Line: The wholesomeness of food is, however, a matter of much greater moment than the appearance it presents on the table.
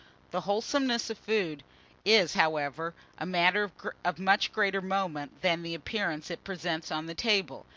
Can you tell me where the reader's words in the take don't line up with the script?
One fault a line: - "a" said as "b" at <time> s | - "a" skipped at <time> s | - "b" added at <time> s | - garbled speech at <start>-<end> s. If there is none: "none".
none